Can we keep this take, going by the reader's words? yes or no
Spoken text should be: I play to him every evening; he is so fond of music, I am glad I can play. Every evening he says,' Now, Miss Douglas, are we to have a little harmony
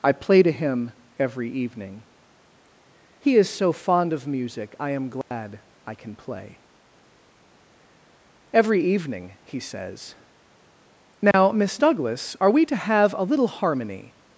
yes